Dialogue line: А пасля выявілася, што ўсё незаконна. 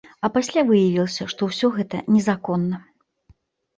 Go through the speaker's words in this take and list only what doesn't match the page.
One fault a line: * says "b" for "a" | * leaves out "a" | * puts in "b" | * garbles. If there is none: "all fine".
* puts in "гэта"